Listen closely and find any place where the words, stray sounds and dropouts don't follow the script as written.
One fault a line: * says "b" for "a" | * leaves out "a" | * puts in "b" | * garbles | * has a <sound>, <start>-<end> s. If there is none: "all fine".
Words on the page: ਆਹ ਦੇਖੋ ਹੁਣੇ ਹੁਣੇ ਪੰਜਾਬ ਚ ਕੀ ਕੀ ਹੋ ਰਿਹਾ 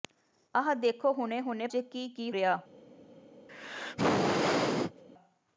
* leaves out "ਪੰਜਾਬ"
* leaves out "ਹੋ"
* has a sneeze, 3.5-5.0 s